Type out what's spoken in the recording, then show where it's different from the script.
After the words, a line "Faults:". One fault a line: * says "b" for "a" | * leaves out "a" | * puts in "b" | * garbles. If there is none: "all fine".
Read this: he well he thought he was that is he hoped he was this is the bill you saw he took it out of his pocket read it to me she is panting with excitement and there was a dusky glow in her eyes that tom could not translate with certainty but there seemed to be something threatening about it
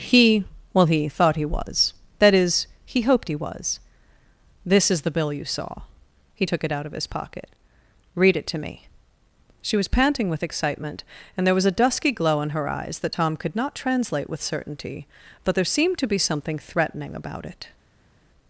he well he thought he was that is he hoped he was this is the bill you saw he took it out of his pocket read it to me she was panting with excitement and there was a dusky glow in her eyes that tom could not translate with certainty but there seemed to be something threatening about it
Faults:
* says "was" for "is"